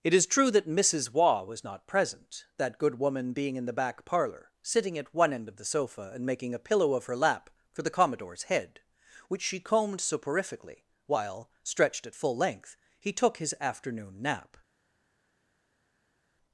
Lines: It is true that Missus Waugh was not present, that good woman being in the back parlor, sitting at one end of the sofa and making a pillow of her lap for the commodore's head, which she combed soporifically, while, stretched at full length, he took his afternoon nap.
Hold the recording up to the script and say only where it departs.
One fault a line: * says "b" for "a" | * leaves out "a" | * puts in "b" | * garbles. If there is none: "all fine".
all fine